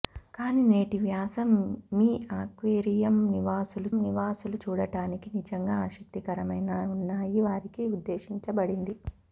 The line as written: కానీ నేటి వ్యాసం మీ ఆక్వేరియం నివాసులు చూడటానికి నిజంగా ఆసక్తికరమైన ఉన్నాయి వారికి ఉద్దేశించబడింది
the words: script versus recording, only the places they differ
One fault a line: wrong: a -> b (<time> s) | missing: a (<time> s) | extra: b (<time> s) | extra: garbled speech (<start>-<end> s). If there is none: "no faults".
extra: నివాసులు (4.0 s)